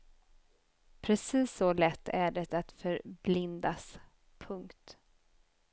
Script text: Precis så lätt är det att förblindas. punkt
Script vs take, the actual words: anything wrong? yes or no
no